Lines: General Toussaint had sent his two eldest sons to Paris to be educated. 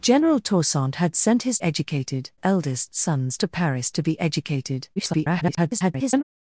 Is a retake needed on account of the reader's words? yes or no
yes